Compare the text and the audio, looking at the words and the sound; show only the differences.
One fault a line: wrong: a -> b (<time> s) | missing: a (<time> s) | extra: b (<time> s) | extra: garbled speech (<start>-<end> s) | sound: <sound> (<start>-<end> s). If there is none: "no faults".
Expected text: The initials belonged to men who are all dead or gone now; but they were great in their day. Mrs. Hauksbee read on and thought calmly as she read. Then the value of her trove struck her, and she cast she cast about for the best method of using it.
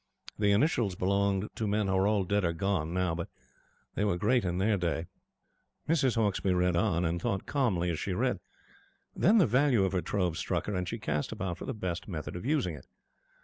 missing: she cast (11.3 s)